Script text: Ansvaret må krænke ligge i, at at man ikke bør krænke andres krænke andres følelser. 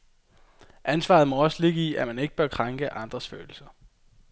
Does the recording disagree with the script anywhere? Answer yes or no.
yes